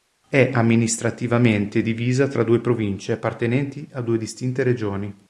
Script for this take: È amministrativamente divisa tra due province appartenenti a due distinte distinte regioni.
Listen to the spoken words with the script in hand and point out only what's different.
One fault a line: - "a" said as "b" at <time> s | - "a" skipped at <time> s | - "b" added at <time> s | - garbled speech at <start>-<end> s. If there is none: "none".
- "distinte" skipped at 4.6 s